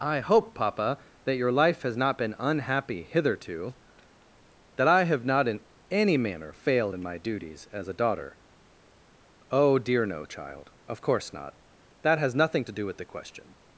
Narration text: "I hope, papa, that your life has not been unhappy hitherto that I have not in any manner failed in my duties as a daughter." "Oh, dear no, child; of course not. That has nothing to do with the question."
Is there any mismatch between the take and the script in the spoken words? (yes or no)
no